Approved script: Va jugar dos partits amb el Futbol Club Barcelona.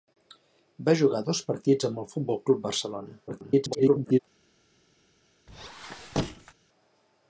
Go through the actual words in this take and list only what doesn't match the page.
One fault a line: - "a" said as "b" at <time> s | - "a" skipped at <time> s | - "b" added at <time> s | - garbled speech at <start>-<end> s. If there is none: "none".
- garbled speech at 3.3-4.2 s